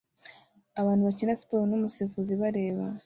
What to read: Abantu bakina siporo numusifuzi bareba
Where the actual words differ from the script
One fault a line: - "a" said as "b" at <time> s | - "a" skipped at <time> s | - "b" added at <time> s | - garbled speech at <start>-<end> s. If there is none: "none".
none